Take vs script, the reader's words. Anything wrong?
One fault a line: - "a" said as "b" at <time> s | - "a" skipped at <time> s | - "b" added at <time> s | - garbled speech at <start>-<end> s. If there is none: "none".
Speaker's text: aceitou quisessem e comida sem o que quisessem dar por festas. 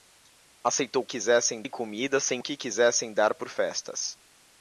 none